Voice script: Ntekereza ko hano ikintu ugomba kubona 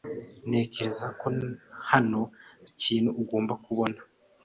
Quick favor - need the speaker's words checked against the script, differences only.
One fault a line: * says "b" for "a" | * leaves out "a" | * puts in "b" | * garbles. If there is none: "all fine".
all fine